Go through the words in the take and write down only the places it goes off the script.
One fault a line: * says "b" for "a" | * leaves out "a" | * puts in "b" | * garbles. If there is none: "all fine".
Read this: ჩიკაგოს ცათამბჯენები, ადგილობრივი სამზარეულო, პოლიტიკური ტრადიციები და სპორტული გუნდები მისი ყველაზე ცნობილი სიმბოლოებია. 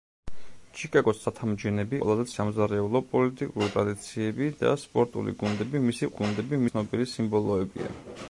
* says "ყველაზე" for "ადგილობრივი"
* says "გუნდები" for "ყველაზე"